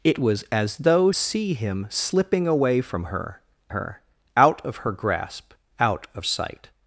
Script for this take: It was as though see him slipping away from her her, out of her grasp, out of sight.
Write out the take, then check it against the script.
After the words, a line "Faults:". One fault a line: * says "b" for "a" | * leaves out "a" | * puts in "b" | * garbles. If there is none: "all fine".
It was as though see him slipping away from her her, out of her grasp, out of sight.
Faults:
all fine